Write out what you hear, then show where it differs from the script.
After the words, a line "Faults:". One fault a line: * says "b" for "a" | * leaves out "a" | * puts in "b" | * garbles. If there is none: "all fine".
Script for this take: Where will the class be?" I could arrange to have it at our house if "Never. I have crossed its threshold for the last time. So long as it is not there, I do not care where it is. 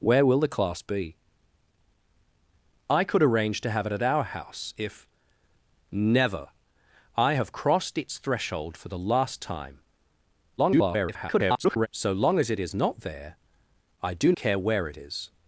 Where will the class be?" I could arrange to have it at our house if "Never. I have crossed its threshold for the last time. [garbled] So long as it is not there, I do care where it is.
Faults:
* garbles
* leaves out "not"